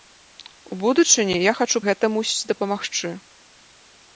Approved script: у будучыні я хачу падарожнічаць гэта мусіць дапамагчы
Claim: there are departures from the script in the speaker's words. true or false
true